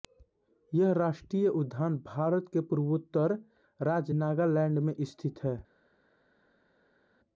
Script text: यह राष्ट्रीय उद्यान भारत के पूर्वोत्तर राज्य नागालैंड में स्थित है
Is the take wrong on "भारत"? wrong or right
right